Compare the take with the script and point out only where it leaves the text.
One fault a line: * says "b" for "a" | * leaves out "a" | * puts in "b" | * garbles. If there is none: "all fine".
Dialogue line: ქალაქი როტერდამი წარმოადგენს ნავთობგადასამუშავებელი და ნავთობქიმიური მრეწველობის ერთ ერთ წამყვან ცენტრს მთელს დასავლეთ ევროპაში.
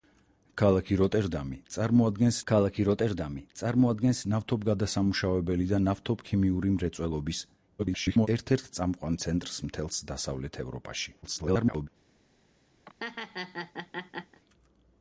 * puts in "ქალაქი როტერდამი წარმოადგენს"
* garbles
* garbles